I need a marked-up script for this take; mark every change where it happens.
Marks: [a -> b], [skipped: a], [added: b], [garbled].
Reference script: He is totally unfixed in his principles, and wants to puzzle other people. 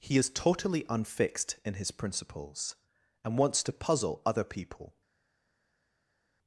He is totally unfixed in his principles, and wants to puzzle other people.